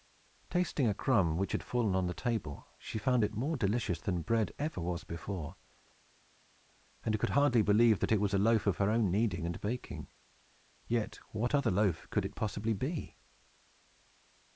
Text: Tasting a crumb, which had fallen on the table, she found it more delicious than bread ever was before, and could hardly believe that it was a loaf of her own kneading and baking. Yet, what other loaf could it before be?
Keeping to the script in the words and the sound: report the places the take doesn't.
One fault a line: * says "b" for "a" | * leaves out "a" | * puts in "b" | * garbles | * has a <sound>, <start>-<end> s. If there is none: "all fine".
* says "possibly" for "before"